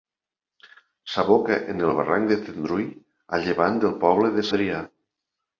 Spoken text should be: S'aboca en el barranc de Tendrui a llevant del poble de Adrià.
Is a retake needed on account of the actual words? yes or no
no